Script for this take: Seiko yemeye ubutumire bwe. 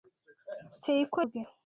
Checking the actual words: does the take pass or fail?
fail